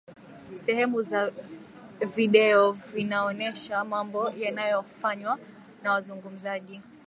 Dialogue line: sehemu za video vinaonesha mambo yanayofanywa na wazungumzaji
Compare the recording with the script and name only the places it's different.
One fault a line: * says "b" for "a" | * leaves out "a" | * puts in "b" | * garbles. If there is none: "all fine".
all fine